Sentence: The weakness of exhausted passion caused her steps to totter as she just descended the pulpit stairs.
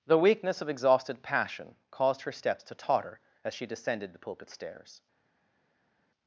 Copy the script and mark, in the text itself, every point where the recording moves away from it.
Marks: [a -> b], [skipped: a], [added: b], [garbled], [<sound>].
The weakness of exhausted passion caused her steps to totter as she [skipped: just] descended the pulpit stairs.